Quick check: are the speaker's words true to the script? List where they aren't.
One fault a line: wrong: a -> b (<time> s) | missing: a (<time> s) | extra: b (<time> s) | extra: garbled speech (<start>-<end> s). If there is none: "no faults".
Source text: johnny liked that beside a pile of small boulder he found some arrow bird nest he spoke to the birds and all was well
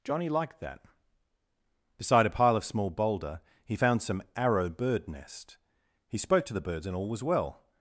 no faults